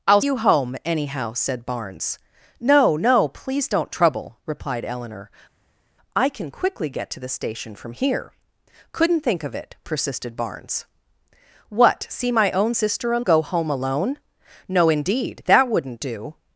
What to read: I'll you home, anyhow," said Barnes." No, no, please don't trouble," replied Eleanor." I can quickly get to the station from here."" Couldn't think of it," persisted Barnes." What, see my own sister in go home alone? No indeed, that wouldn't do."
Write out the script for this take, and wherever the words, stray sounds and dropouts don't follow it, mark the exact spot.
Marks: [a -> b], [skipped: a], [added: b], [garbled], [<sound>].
I'll you home, anyhow," said Barnes." No, no, please don't trouble," replied Eleanor." I can quickly get to the station from here."" Couldn't think of it," persisted Barnes." What, see my own sister in go home alone? No indeed, that wouldn't do."